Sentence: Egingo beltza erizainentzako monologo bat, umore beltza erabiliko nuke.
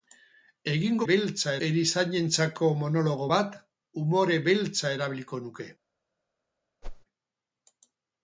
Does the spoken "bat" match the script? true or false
true